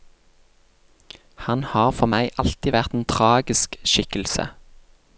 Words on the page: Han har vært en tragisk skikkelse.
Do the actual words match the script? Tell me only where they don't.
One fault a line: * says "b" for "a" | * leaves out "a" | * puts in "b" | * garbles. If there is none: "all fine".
* puts in "for meg alltid"